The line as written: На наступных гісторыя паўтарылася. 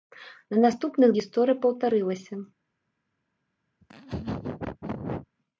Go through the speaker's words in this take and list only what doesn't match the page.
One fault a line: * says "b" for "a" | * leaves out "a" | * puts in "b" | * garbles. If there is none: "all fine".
all fine